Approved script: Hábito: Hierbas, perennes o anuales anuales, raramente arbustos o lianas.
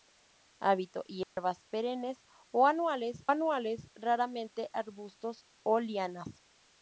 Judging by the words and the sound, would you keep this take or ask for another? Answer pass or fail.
fail